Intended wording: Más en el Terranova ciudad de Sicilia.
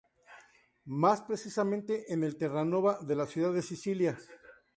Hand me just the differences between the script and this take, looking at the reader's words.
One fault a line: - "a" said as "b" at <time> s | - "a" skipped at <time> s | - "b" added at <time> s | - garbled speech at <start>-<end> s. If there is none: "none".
- "precisamente" added at 1.2 s
- "de la" added at 3.0 s